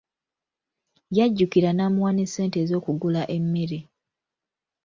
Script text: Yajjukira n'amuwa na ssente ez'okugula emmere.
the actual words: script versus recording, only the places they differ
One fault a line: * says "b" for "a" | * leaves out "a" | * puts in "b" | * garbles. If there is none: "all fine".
* says "ne" for "na"